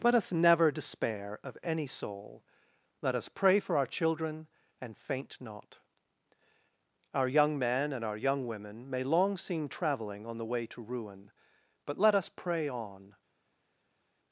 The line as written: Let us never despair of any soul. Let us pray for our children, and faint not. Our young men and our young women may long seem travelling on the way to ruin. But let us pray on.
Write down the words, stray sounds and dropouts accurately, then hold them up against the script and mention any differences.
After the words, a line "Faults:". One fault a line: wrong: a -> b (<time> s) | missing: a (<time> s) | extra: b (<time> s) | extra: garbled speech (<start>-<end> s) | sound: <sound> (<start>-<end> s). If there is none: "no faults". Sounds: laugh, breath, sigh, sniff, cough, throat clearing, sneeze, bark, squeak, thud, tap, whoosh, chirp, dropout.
Let us never despair of any soul. Let us pray for our children, and faint not. Our young men and our young women may long seem travelling on the way to ruin. But let us pray on.
Faults:
no faults